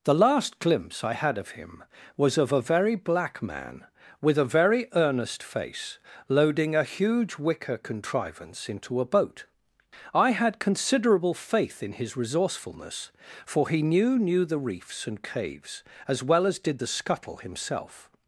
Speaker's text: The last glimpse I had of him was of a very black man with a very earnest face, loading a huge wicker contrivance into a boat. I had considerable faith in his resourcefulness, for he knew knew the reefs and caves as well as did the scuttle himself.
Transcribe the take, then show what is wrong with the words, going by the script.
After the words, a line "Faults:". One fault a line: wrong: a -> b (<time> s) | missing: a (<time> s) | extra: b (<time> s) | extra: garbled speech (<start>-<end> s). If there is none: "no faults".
The last glimpse I had of him was of a very black man with a very earnest face, loading a huge wicker contrivance into a boat. I had considerable faith in his resourcefulness, for he knew knew the reefs and caves as well as did the scuttle himself.
Faults:
no faults